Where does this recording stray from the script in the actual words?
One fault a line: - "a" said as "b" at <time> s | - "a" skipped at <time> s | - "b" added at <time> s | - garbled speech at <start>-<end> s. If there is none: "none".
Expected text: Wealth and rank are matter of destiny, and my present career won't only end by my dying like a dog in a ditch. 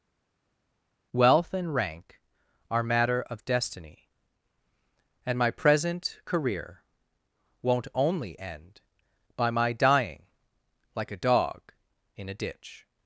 none